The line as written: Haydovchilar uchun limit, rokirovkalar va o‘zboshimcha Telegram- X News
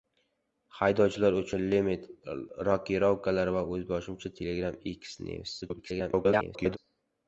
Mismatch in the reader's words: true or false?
true